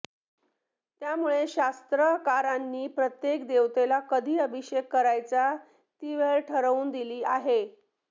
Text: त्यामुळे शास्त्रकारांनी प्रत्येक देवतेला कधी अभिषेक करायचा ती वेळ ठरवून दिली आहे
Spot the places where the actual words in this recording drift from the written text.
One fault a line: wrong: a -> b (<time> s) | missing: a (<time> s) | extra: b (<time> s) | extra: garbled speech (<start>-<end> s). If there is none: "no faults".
no faults